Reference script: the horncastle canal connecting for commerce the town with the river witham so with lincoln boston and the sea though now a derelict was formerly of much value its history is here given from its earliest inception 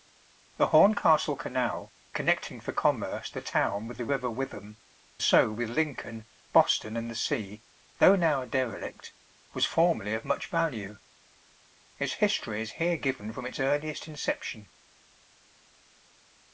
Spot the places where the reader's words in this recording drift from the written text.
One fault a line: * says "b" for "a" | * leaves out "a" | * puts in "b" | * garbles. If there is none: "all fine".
all fine